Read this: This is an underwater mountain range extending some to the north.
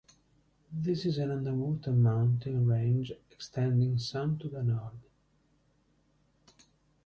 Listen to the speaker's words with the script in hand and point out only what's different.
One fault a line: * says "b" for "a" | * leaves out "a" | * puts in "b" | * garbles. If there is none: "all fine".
all fine